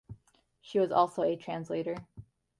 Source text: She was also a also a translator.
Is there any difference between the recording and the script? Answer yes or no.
yes